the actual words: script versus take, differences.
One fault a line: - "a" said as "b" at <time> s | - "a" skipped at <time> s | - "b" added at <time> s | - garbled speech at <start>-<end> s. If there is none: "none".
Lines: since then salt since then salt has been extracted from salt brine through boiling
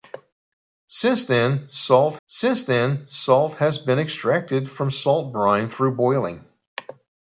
none